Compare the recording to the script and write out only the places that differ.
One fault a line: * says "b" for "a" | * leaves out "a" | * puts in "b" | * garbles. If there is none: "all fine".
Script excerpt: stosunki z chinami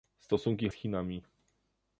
all fine